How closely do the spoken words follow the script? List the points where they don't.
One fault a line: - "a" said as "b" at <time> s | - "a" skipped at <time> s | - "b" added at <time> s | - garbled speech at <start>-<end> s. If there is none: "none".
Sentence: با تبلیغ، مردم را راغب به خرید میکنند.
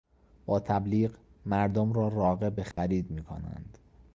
none